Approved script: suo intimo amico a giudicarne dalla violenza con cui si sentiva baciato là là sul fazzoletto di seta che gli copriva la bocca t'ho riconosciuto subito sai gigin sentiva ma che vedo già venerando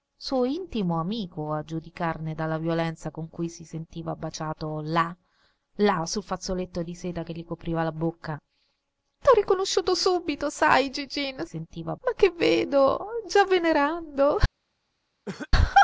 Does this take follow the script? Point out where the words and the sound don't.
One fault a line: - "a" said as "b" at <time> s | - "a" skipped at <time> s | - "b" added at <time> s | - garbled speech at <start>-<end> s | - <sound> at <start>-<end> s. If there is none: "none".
- cough at 15.3-15.5 s